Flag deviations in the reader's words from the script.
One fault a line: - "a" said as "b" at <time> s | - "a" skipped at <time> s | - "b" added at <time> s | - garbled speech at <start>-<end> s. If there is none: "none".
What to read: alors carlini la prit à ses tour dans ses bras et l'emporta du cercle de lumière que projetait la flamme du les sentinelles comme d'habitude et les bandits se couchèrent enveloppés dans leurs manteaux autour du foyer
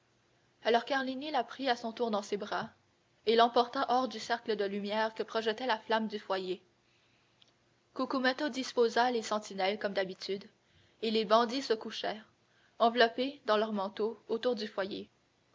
- "ses" said as "son" at 1.8 s
- "hors" added at 3.9 s
- "foyer cucumetto disposa" added at 6.2 s